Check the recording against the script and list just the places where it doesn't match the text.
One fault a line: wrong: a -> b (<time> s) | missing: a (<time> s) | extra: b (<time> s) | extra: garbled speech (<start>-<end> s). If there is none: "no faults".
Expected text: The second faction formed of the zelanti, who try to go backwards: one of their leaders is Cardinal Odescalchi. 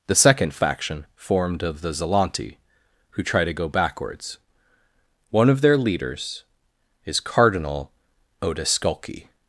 no faults